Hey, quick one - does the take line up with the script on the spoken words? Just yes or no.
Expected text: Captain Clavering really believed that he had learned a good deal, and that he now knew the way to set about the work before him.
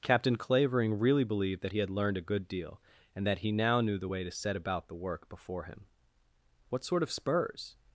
no